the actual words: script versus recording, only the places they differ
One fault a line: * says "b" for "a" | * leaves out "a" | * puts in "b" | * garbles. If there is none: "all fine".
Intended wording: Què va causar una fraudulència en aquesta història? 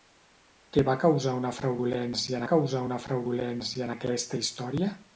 * puts in "causar una fraudulència"